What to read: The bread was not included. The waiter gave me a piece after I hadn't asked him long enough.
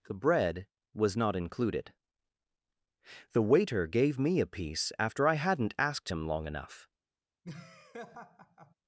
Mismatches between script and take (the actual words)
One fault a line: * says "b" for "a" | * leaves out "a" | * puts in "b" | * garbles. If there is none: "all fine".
all fine